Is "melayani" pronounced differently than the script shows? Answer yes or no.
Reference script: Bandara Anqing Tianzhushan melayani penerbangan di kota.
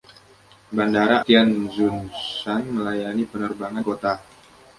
no